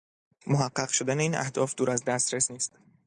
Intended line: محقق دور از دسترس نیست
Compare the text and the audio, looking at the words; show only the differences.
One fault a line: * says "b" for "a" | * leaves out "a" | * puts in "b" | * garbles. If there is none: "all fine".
* puts in "شدن این اهداف"